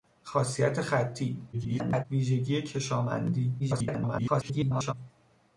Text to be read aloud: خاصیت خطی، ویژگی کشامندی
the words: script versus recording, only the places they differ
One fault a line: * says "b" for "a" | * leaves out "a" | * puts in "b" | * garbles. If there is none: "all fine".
* garbles
* garbles